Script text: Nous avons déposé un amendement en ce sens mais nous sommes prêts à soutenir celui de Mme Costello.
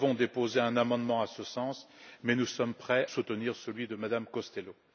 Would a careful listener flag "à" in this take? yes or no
yes